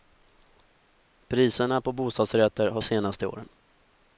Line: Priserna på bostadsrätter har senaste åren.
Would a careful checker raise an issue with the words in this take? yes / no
no